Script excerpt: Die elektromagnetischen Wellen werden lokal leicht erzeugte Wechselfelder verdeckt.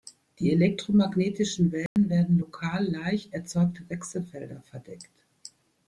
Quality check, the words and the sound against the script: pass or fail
fail